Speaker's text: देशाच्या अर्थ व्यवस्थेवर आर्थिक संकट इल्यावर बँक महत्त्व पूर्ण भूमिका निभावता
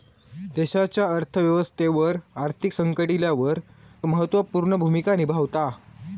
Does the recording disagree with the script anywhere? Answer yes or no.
yes